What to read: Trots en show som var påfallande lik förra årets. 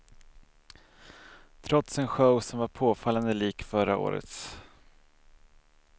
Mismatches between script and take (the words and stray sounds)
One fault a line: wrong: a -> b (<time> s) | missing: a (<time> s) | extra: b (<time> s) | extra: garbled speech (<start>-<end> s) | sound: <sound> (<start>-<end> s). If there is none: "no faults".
no faults